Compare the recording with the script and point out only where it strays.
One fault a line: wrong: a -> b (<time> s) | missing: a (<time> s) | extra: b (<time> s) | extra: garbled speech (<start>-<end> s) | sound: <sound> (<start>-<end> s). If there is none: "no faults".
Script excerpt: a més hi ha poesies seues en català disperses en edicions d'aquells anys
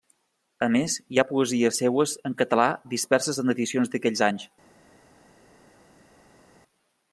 no faults